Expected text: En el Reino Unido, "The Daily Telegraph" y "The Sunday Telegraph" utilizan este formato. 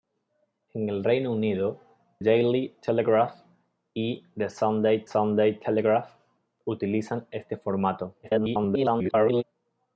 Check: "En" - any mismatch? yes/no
no